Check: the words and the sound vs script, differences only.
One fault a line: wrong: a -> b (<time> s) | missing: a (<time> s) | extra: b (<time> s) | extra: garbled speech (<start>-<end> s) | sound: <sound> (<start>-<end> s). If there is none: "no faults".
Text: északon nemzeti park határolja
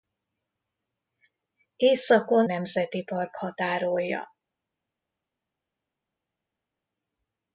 no faults